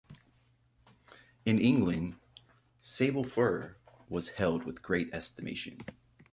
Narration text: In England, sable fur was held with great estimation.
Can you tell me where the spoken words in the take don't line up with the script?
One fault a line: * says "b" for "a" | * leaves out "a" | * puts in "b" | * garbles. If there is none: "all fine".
all fine